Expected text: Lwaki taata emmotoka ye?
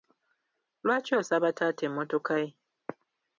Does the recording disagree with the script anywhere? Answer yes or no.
yes